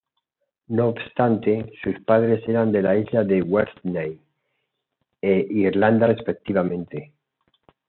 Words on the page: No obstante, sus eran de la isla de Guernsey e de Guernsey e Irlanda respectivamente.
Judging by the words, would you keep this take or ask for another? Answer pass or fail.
fail